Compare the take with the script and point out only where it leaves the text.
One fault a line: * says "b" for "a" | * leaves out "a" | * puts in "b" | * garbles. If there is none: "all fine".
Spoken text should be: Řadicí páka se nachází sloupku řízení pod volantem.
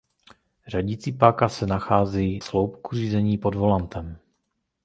all fine